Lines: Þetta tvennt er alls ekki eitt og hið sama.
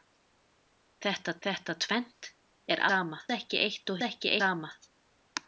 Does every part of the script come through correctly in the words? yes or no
no